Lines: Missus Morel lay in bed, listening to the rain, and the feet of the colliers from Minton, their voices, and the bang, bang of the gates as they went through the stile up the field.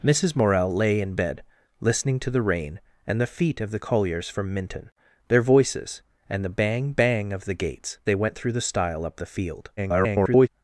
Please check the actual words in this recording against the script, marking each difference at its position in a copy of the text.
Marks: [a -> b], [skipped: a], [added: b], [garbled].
Missus Morel lay in bed, listening to the rain, and the feet of the colliers from Minton, their voices, and the bang, bang of the gates [skipped: as] they went through the stile up the field. [garbled]